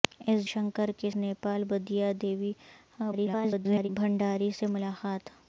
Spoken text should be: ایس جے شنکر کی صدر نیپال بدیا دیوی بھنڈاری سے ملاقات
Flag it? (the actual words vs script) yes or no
yes